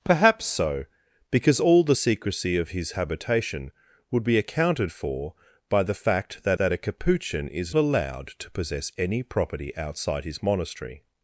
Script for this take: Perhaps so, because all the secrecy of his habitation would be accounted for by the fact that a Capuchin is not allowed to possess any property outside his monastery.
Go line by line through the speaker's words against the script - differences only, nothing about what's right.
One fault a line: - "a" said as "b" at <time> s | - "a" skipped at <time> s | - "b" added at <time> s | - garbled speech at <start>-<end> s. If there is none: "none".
- "that" added at 6.6 s
- "not" skipped at 7.8 s